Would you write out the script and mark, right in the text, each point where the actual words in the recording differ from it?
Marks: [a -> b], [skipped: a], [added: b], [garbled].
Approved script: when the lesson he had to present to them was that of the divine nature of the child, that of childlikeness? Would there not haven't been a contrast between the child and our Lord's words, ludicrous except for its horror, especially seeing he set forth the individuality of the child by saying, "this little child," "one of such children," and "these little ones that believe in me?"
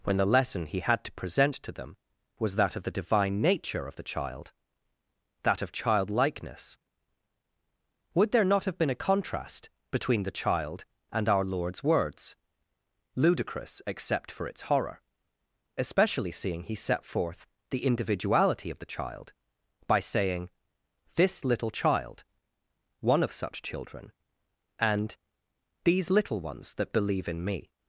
when the lesson he had to present to them was that of the divine nature of the child, that of childlikeness? Would there not [haven't -> have] been a contrast between the child and our Lord's words, ludicrous except for its horror, especially seeing he set forth the individuality of the child by saying, "this little child," "one of such children," and "these little ones that believe in me?"